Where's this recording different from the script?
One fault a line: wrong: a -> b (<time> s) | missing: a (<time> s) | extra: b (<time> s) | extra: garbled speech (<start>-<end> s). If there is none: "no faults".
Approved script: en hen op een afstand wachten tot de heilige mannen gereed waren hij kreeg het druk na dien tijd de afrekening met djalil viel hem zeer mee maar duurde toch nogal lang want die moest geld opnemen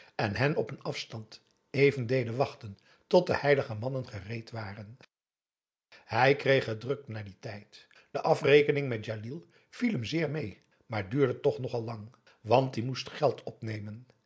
extra: even deden (1.7 s)